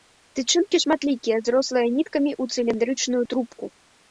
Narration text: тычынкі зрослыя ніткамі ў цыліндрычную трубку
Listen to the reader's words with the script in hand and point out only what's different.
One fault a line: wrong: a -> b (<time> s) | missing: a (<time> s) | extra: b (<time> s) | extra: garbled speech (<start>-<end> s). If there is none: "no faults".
extra: шматлікія (0.8 s)